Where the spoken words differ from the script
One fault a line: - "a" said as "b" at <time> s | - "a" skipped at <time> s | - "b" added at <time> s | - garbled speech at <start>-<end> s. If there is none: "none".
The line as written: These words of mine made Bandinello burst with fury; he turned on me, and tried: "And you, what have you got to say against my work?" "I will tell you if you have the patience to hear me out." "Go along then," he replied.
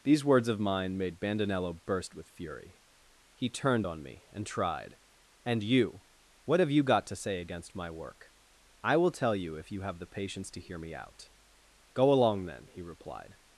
none